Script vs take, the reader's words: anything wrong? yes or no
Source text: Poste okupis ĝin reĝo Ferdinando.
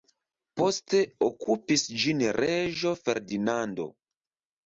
no